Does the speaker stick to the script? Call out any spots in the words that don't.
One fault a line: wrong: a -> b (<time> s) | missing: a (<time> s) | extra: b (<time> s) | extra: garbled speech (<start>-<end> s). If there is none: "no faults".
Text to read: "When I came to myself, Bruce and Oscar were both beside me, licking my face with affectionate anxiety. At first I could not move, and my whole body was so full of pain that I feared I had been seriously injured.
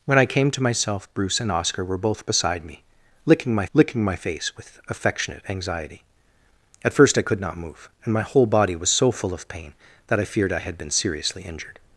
extra: licking my (3.7 s)